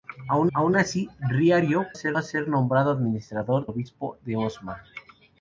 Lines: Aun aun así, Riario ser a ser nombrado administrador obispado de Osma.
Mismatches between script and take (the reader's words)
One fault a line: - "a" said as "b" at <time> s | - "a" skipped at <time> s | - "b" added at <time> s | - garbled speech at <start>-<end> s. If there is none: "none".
none